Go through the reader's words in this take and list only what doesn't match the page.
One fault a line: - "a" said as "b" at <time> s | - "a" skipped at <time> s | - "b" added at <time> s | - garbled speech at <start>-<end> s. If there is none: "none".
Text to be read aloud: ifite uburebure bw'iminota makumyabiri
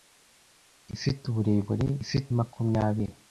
- "bw'iminota" said as "ifite" at 2.0 s